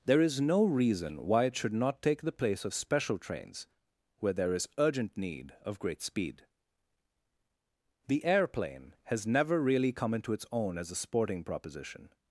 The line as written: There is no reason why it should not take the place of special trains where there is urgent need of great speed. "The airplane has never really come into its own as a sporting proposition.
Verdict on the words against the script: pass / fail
pass